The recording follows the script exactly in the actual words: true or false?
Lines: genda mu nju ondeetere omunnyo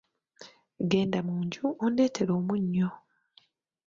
true